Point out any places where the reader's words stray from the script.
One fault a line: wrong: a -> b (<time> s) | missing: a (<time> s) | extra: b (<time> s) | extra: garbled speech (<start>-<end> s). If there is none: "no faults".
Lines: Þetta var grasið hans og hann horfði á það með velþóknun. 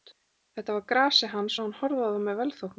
no faults